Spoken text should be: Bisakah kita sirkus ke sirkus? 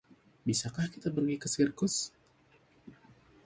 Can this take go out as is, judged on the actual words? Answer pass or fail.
fail